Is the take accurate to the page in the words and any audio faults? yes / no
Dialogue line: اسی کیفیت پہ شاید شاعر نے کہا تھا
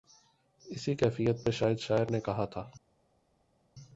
yes